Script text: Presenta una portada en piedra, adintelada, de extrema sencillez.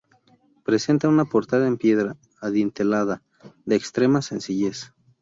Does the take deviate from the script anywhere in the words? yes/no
no